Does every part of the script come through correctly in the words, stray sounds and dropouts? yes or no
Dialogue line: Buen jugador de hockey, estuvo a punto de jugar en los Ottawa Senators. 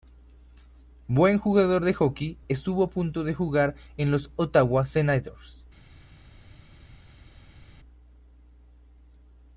yes